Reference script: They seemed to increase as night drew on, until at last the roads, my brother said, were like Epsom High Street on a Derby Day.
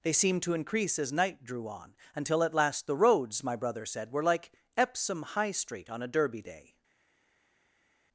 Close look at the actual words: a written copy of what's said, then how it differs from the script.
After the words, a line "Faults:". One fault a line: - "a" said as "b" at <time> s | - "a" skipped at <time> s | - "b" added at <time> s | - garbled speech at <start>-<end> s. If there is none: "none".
They seemed to increase as night drew on, until at last the roads, my brother said, were like Epsom High Street on a Derby Day.
Faults:
none